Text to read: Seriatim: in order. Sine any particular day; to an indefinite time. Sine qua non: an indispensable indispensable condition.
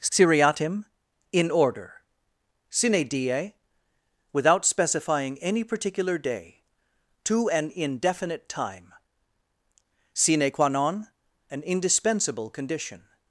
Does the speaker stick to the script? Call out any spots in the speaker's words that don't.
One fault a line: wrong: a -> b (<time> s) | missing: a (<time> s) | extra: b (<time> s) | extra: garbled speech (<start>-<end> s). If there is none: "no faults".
extra: die without specifying (3.1 s)
missing: indispensable (12.5 s)